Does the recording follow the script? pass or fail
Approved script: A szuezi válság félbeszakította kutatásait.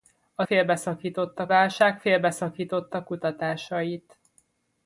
fail